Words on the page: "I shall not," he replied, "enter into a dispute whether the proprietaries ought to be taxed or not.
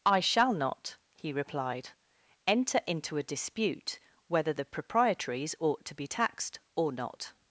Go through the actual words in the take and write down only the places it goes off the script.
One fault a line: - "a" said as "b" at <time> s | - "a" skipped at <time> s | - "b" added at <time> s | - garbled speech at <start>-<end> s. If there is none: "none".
none